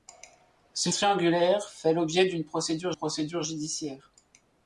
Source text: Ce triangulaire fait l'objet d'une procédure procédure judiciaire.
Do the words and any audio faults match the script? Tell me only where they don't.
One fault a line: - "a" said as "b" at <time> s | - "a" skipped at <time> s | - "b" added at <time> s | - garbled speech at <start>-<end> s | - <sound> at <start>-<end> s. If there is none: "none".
none